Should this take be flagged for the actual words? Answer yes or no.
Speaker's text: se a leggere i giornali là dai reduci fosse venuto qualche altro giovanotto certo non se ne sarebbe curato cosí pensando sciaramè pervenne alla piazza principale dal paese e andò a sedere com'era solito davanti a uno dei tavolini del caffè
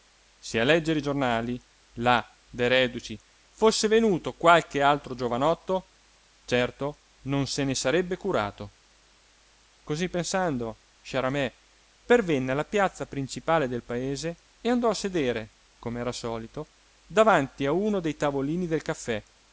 yes